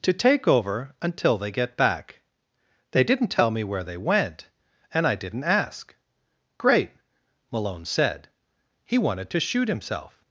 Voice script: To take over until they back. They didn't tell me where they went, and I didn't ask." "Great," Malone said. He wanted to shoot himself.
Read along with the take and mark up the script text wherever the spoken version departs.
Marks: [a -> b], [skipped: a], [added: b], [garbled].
To take over until they [added: get] back. They didn't tell me where they went, and I didn't ask." "Great," Malone said. He wanted to shoot himself.